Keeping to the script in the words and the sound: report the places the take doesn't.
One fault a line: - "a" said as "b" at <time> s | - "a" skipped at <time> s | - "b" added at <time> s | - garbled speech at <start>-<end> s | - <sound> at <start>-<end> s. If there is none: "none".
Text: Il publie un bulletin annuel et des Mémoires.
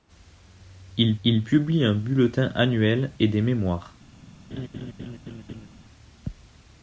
- "il" added at 1.2 s
- laugh at 4.5-5.7 s